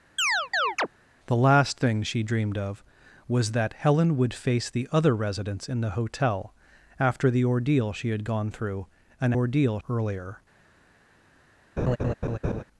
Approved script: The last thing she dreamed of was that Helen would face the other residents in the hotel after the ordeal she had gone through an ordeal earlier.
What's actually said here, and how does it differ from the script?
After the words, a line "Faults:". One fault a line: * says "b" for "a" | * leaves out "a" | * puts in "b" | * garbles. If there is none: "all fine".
The last thing she dreamed of was that Helen would face the other residents in the hotel after the ordeal she had gone through an ordeal earlier.
Faults:
all fine